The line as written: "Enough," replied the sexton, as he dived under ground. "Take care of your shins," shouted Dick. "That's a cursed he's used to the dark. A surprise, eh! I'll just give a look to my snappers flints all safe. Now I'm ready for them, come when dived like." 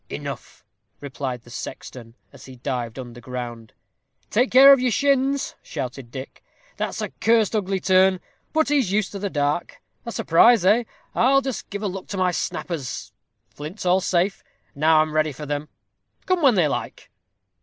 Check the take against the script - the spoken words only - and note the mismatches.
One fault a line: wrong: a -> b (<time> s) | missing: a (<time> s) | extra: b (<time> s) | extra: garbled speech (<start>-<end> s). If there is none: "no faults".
extra: ugly turn but (7.5 s)
wrong: dived -> they (16.6 s)